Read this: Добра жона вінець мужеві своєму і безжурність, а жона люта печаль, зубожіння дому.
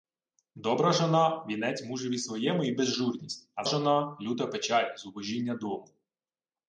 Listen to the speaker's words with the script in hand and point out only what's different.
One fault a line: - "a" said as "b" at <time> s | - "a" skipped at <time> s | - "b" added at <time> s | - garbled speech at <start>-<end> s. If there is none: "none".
none